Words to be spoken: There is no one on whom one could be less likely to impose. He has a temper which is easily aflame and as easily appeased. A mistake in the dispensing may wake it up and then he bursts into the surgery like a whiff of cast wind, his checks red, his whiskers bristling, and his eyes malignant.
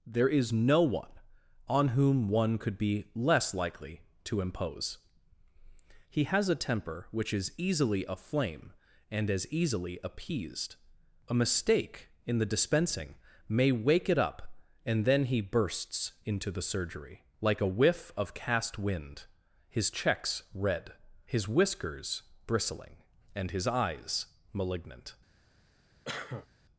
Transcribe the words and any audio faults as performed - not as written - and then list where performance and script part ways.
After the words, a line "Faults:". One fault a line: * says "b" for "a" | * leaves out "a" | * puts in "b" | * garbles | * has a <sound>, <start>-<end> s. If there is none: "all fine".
There is no one on whom one could be less likely to impose. He has a temper which is easily aflame and as easily appeased. A mistake in the dispensing may wake it up and then he bursts into the surgery like a whiff of cast wind, his checks red, his whiskers bristling, and his eyes malignant.
Faults:
* has a cough, 26.1-26.5 s